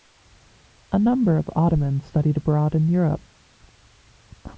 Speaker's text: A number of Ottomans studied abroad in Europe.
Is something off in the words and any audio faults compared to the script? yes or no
no